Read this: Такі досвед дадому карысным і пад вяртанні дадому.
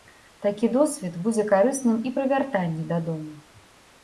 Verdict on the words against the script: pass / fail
fail